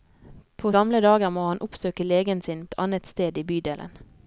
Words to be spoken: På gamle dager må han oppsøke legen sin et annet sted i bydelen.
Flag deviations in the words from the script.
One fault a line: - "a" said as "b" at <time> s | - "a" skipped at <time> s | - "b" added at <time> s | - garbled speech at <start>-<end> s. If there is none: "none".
none